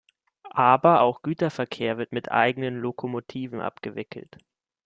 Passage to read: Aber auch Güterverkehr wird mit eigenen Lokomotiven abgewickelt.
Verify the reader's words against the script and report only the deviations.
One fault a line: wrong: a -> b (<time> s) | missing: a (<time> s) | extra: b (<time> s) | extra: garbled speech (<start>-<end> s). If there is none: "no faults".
no faults